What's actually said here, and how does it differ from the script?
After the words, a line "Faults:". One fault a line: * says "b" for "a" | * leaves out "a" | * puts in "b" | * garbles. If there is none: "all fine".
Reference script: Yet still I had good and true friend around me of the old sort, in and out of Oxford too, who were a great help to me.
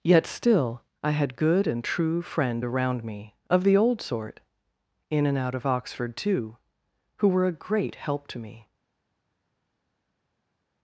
Yet still I had good and true friend around me of the old sort, in and out of Oxford too, who were a great help to me.
Faults:
all fine